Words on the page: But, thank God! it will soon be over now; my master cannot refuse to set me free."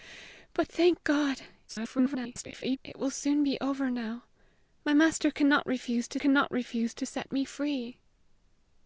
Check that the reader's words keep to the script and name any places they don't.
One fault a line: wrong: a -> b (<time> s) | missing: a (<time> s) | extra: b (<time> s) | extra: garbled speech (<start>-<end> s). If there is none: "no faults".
extra: garbled speech (1.7-2.8 s)
extra: cannot refuse to (6.1 s)